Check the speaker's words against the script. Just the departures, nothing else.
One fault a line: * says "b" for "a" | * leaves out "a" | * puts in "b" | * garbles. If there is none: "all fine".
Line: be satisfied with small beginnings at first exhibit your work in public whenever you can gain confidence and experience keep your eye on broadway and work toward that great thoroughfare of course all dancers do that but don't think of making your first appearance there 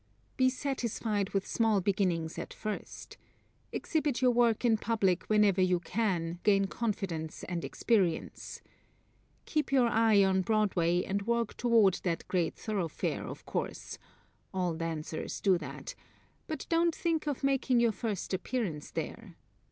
all fine